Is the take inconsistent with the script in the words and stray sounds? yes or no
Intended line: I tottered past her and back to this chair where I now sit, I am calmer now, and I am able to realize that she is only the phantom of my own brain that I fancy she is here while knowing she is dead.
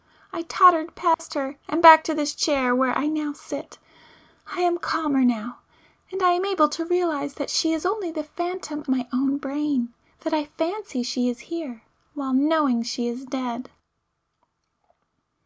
yes